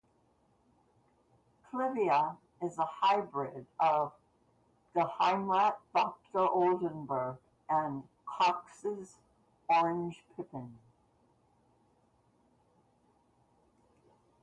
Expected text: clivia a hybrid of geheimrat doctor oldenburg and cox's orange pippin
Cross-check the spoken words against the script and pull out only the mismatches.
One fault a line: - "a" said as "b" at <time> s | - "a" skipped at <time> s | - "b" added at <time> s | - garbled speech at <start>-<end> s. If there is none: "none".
- "is" added at 2.6 s